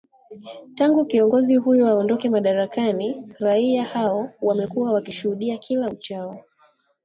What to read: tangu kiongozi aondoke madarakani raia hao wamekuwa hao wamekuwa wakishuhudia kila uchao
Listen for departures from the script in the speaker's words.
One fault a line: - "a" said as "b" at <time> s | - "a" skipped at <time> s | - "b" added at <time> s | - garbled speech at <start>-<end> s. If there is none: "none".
- "huyo" added at 1.6 s
- "hao wamekuwa" skipped at 4.9 s